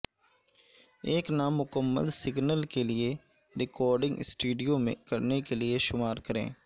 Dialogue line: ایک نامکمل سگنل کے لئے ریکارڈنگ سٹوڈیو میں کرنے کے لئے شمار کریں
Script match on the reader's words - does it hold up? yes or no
yes